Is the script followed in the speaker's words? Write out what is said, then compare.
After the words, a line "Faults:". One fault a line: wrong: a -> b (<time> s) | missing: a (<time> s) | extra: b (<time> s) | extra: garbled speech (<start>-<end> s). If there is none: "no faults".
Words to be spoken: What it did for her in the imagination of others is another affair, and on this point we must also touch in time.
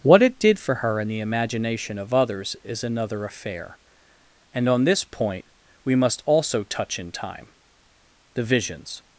What it did for her in the imagination of others is another affair, and on this point we must also touch in time. The visions
Faults:
extra: The visions (8.3 s)